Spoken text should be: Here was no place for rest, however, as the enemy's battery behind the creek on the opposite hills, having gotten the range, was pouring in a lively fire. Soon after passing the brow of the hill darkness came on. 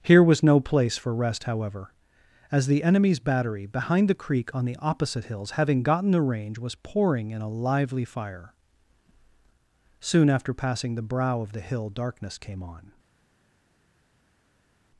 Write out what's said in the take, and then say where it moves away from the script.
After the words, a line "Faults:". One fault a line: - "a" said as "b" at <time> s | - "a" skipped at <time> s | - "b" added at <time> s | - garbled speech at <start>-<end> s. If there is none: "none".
Here was no place for rest, however, as the enemy's battery behind the creek on the opposite hills, having gotten the range, was pouring in a lively fire. Soon after passing the brow of the hill darkness came on.
Faults:
none